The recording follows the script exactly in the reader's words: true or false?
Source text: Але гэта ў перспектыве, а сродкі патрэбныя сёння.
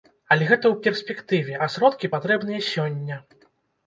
true